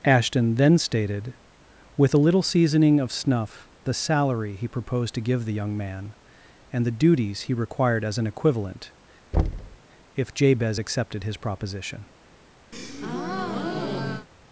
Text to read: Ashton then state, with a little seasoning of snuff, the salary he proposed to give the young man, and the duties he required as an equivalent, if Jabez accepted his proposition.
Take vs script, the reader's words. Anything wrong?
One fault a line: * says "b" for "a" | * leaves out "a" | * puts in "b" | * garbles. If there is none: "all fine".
* says "stated" for "state"